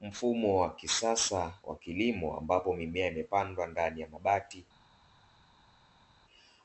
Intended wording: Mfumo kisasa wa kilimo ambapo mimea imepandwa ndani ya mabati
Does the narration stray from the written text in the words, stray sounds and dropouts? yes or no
yes